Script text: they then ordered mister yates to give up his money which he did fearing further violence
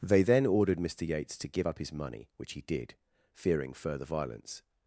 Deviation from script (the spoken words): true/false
false